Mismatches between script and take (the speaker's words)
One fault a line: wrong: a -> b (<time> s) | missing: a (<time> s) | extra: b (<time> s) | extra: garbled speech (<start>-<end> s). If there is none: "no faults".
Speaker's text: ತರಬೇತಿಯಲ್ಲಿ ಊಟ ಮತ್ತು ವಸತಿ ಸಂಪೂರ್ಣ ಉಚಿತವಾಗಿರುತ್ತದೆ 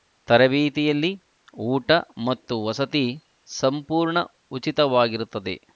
no faults